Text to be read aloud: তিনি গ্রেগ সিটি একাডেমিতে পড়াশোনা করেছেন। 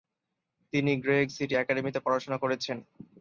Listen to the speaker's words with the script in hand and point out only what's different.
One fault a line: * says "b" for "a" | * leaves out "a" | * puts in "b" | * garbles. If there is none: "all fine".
all fine